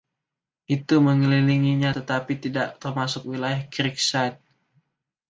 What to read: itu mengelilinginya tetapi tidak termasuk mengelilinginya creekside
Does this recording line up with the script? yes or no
no